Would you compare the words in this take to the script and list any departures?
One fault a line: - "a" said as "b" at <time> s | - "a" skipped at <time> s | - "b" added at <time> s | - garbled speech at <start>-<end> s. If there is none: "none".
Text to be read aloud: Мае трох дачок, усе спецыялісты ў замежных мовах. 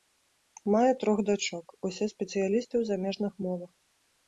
none